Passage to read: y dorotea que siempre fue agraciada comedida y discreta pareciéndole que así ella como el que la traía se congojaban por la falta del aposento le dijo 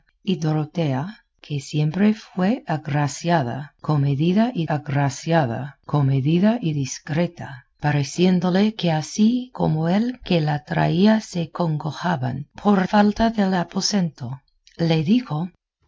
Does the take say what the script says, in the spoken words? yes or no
no